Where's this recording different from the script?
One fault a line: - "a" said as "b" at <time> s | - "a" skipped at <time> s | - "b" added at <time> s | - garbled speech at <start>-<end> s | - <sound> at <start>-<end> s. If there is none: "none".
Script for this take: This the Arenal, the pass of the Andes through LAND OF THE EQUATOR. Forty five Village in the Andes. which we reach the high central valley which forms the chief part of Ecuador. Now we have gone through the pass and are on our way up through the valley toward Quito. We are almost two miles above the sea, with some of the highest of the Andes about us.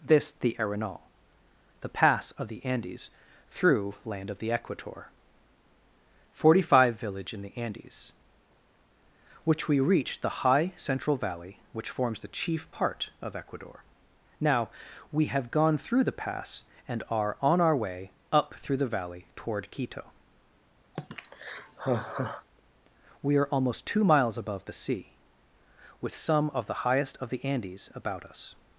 - sigh at 21.0-22.5 s